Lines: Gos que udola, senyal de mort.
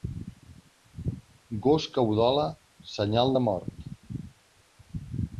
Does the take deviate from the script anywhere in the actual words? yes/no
no